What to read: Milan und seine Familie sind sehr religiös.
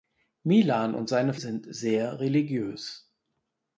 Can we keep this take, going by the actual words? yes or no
no